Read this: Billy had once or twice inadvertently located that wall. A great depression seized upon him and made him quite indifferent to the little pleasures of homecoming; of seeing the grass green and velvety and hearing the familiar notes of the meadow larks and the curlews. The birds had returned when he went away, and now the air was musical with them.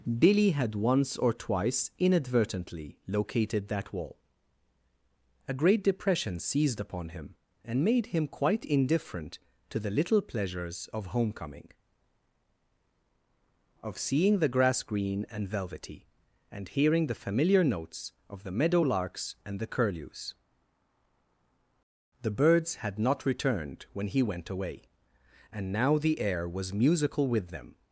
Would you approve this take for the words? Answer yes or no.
no